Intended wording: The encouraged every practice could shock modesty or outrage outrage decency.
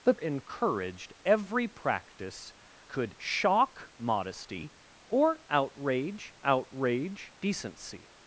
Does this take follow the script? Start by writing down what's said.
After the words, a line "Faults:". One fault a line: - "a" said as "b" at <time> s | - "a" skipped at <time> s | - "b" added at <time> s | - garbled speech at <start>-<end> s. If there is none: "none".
The encouraged every practice could shock modesty or outrage outrage decency.
Faults:
none